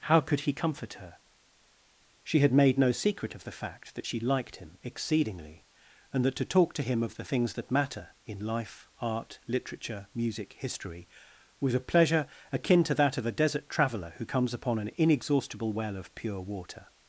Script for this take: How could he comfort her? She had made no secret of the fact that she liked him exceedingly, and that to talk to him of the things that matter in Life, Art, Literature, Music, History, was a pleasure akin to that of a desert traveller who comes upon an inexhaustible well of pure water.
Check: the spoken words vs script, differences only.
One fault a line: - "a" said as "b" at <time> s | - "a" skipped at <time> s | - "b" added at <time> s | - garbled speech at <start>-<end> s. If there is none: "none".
none